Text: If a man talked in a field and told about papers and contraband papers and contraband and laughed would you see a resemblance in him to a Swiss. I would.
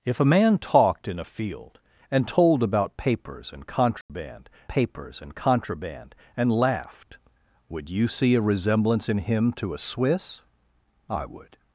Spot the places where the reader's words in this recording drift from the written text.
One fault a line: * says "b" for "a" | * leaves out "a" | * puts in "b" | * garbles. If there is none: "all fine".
all fine